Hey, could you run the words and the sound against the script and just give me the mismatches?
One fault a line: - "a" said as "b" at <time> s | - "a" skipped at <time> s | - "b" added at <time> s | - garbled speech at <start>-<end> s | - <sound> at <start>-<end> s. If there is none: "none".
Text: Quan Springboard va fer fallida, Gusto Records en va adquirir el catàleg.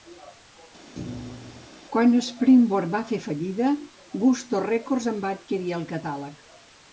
- thud at 0.9-1.7 s